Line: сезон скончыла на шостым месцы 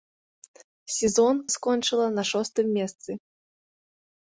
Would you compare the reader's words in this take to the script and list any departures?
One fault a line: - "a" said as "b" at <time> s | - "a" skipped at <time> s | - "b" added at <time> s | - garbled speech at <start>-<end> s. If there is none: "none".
none